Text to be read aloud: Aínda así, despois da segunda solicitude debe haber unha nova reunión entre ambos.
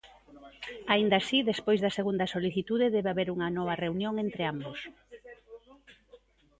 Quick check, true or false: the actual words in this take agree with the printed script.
true